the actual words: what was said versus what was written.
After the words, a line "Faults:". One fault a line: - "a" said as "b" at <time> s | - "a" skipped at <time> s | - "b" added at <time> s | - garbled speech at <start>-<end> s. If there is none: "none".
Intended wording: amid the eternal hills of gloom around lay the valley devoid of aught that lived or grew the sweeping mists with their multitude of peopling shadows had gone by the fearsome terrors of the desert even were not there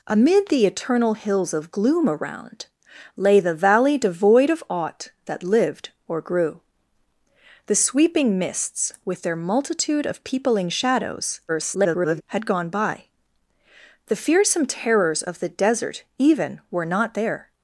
amid the eternal hills of gloom around lay the valley devoid of aught that lived or grew the sweeping mists with their multitude of peopling shadows [garbled] had gone by the fearsome terrors of the desert even were not there
Faults:
- garbled speech at 11.5-12.2 s